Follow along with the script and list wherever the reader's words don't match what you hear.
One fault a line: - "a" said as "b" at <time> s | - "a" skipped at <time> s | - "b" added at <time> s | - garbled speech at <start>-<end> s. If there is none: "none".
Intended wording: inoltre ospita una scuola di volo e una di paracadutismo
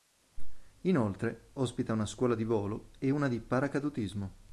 none